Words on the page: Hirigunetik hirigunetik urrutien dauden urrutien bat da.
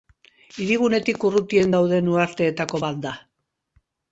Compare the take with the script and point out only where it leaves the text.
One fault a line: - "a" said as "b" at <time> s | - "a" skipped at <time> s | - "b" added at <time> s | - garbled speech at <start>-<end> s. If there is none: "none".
- "hirigunetik" skipped at 1.3 s
- "urrutien" said as "uharteetako" at 2.1 s